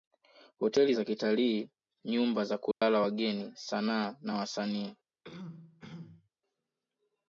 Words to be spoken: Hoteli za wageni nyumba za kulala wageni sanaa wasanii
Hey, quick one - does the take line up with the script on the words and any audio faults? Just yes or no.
no